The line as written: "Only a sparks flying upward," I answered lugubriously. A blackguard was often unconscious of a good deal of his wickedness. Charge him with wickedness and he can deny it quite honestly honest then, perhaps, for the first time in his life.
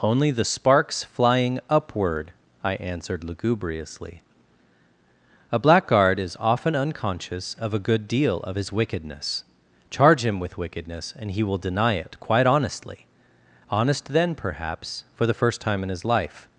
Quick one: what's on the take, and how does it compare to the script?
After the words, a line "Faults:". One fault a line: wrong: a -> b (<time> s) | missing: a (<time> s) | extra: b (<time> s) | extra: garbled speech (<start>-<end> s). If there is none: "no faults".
"Only the sparks flying upward," I answered lugubriously. A blackguard is often unconscious of a good deal of his wickedness. Charge him with wickedness and he will deny it quite honestly honest then, perhaps, for the first time in his life.
Faults:
wrong: a -> the (0.3 s)
wrong: was -> is (6.2 s)
wrong: can -> will (11.4 s)